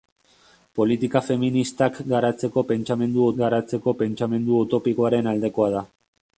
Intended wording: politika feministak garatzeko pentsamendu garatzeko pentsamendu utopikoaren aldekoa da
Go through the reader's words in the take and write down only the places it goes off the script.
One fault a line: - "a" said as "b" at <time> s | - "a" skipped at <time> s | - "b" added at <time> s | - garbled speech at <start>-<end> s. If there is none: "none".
none